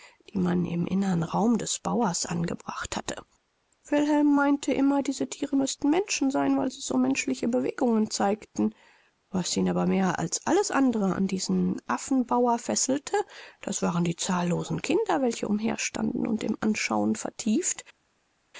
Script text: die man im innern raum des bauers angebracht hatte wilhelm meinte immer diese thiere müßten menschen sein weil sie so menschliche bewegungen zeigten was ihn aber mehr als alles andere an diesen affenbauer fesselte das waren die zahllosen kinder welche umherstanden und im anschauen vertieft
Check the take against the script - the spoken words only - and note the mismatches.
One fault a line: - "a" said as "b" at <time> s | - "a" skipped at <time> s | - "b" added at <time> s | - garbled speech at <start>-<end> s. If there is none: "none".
none